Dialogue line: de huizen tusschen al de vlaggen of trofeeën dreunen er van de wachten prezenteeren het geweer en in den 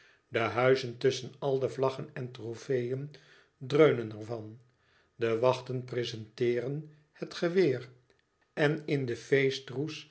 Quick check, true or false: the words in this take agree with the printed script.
false